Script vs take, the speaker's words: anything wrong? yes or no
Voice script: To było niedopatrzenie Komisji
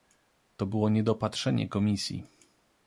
no